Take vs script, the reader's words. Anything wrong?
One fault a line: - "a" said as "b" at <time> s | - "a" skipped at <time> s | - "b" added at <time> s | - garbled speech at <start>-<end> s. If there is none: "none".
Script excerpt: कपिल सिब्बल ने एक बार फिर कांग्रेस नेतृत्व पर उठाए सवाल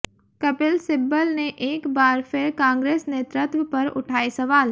none